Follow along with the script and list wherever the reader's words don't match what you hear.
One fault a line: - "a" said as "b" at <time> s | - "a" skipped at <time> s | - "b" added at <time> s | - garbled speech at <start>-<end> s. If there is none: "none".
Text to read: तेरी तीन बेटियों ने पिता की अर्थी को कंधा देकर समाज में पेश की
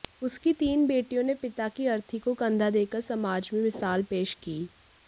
- "तेरी" said as "उसकी" at 0.2 s
- "मिसाल" added at 3.6 s